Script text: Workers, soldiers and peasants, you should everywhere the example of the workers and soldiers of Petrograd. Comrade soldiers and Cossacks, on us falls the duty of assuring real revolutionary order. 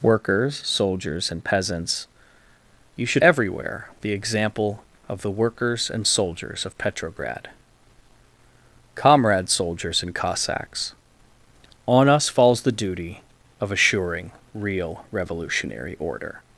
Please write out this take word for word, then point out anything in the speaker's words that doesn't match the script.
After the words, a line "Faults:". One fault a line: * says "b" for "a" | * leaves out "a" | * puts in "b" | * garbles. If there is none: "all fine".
Workers, soldiers and peasants, you should everywhere the example of the workers and soldiers of Petrograd. Comrade soldiers and Cossacks, on us falls the duty of assuring real revolutionary order.
Faults:
all fine